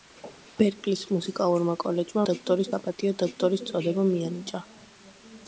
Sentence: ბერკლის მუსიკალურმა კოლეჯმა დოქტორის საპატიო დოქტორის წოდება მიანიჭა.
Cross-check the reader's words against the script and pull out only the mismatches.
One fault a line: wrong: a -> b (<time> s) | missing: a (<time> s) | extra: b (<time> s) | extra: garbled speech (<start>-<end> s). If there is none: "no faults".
no faults